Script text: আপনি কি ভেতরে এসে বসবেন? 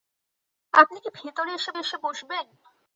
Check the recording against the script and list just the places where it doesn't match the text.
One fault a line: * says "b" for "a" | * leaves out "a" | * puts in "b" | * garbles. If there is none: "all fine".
* puts in "এসে"